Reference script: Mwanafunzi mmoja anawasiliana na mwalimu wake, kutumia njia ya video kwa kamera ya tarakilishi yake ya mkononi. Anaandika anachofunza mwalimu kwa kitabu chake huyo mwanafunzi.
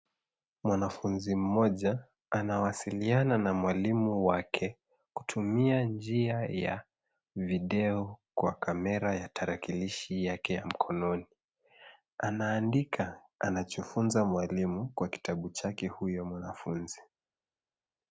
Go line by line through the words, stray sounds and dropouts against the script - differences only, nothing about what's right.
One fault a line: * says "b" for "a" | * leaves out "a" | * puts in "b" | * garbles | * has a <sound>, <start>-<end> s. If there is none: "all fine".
all fine